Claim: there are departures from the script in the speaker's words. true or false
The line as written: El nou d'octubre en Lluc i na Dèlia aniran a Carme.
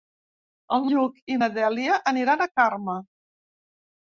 true